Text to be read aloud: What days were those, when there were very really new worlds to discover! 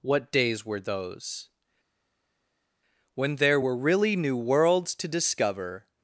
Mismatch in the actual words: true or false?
true